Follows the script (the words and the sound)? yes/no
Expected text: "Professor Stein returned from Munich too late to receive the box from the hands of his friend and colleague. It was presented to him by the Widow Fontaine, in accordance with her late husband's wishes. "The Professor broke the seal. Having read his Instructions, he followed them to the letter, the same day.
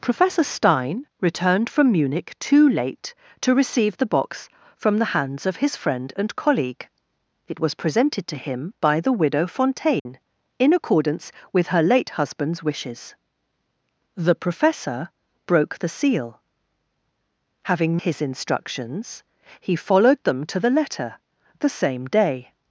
no